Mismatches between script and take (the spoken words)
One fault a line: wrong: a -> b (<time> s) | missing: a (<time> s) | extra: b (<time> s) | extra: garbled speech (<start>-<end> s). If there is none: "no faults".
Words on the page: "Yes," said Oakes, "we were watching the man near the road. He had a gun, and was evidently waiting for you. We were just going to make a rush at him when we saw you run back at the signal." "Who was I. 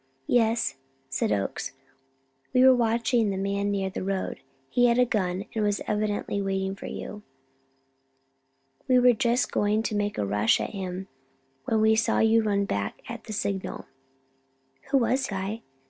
no faults